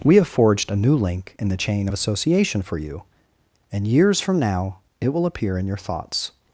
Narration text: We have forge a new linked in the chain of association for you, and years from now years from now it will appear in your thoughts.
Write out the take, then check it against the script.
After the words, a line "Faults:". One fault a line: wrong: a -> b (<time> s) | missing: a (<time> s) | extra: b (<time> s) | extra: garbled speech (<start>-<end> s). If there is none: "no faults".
We have forged a new link in the chain of association for you, and years from now it will appear in your thoughts.
Faults:
wrong: forge -> forged (0.3 s)
wrong: linked -> link (0.9 s)
missing: years from now (4.8 s)